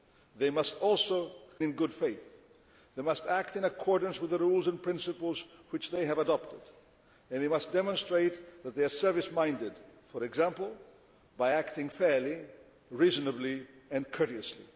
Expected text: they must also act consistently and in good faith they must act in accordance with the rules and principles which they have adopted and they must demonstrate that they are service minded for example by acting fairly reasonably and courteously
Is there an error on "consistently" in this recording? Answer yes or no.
yes